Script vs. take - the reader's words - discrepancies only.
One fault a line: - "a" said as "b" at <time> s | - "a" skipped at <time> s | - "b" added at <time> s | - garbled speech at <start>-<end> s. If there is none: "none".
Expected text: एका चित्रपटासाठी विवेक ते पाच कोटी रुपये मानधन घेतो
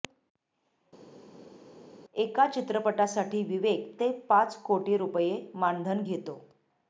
none